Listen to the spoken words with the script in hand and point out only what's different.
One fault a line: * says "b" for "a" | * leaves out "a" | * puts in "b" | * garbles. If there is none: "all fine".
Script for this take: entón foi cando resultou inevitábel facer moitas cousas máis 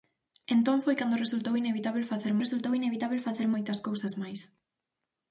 * puts in "resultou inevitábel facer"